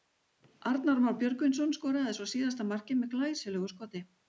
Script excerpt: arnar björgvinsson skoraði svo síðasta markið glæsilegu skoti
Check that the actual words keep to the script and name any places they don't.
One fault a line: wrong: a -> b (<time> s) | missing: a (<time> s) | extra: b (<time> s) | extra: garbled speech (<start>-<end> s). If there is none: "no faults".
extra: már (1.0 s)
extra: með (3.0 s)